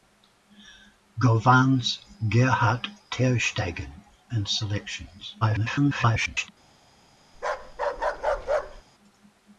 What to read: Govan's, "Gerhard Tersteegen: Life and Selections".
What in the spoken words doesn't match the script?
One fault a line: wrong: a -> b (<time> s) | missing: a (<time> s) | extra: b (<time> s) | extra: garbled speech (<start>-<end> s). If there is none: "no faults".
missing: Life (3.9 s)
extra: garbled speech (5.4-6.5 s)